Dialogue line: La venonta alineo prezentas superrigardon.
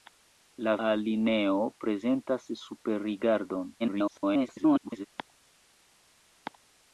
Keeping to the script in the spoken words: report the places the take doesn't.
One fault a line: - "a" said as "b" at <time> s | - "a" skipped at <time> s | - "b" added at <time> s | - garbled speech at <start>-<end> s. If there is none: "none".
- "venonta" skipped at 0.7 s
- garbled speech at 3.8-5.1 s